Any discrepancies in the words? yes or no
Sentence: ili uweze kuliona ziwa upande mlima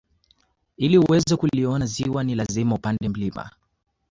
yes